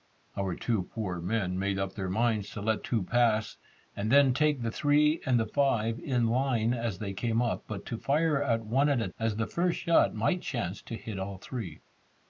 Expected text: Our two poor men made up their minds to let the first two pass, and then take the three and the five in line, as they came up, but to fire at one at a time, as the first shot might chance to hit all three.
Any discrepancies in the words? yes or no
yes